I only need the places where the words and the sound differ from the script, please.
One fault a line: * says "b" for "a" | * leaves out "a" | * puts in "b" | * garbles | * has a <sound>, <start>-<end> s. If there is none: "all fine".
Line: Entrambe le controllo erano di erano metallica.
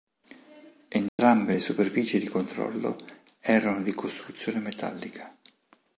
* has a dropout, 1.1-1.2 s
* puts in "superfici di"
* says "costruzione" for "erano"